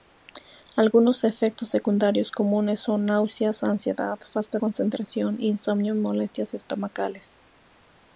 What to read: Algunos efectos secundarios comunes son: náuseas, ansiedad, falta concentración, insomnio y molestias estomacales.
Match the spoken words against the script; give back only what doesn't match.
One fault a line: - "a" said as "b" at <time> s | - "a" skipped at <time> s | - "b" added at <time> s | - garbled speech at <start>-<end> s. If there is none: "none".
none